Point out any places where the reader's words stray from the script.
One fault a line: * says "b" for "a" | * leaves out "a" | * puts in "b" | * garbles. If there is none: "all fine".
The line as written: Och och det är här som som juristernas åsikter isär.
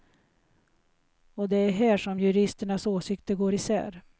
* leaves out "och"
* leaves out "som"
* puts in "går"